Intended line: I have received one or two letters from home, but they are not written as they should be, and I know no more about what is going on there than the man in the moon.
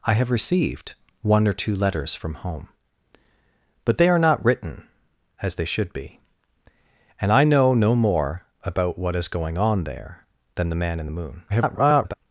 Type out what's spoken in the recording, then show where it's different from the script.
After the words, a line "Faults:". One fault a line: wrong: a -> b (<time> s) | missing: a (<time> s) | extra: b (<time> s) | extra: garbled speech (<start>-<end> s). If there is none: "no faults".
I have received one or two letters from home, but they are not written as they should be, and I know no more about what is going on there than the man in the moon. [garbled]
Faults:
extra: garbled speech (11.5-12.1 s)